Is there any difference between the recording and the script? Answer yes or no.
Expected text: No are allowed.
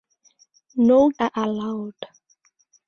no